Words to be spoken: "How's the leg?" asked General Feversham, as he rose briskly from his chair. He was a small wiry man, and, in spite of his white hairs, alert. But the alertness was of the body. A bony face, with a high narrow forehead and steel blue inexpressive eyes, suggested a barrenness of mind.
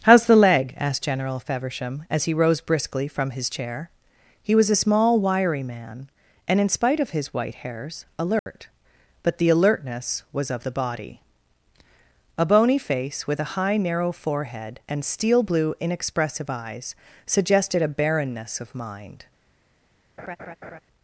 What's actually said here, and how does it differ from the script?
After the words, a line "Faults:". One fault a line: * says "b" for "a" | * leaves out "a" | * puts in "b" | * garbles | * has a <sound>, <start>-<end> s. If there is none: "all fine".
"How's the leg?" asked General Feversham, as he rose briskly from his chair. He was a small wiry man, and, in spite of his white hairs, alert. But the alertness was of the body. A bony face, with a high narrow forehead and steel blue inexpressive eyes, suggested a barrenness of mind.
Faults:
* has a dropout, 8.4-8.5 s
* has a laugh, 20.2-20.8 s